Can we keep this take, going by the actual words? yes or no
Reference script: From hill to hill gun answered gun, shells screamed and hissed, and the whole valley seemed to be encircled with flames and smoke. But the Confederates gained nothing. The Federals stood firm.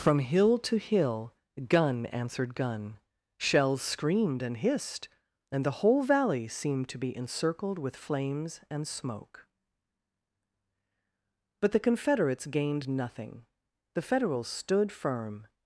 yes